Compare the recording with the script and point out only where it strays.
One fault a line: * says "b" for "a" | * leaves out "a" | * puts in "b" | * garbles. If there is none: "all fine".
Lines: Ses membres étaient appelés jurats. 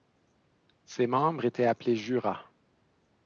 all fine